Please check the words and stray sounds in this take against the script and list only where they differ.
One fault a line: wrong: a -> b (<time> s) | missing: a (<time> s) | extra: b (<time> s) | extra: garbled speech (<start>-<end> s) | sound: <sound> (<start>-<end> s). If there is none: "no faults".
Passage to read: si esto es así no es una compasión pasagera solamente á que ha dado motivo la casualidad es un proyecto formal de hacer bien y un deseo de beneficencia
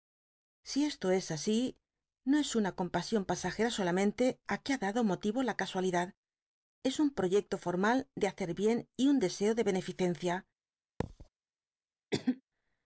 sound: thud (11.0-11.3 s)
sound: cough (12.1-12.4 s)